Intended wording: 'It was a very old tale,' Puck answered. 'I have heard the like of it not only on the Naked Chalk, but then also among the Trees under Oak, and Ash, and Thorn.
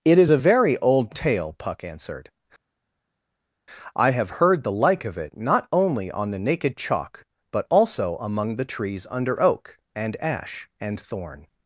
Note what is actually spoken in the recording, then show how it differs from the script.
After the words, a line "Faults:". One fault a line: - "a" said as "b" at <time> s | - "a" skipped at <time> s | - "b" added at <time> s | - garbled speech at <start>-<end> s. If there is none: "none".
'It is a very old tale,' Puck answered. 'I have heard the like of it not only on the Naked Chalk, but also among the Trees under Oak, and Ash, and Thorn.
Faults:
- "was" said as "is" at 0.2 s
- "then" skipped at 7.6 s